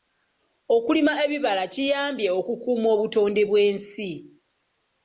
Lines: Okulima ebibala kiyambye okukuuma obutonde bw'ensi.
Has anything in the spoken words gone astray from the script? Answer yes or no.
no